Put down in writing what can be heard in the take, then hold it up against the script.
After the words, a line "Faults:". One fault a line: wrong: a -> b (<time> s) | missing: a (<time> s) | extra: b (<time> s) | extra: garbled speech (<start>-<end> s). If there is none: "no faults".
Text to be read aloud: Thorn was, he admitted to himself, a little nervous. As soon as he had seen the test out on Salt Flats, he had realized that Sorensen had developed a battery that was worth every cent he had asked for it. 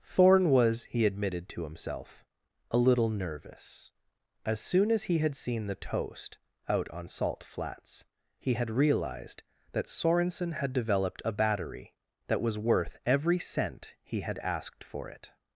Thorn was, he admitted to himself, a little nervous. As soon as he had seen the toast out on Salt Flats, he had realized that Sorensen had developed a battery that was worth every cent he had asked for it.
Faults:
wrong: test -> toast (5.8 s)